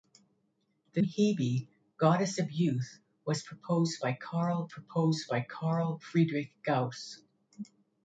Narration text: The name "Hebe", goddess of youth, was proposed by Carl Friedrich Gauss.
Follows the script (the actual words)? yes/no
no